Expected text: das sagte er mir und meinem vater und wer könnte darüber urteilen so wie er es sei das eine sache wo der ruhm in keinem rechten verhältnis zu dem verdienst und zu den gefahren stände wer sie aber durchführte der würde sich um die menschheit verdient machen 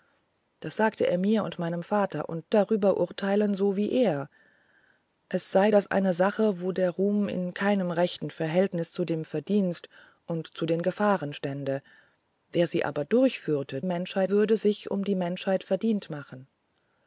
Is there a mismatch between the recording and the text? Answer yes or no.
yes